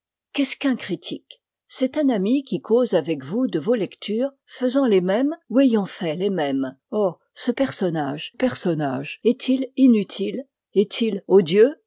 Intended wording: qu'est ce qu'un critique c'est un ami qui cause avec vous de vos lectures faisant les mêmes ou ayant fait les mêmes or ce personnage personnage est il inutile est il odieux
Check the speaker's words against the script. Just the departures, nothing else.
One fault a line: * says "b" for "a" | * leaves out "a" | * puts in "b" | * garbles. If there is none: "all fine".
all fine